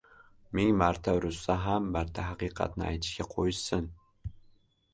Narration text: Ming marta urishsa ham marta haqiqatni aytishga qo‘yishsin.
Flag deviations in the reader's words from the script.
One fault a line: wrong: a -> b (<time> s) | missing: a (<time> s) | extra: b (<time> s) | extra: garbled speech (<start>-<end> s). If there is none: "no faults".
no faults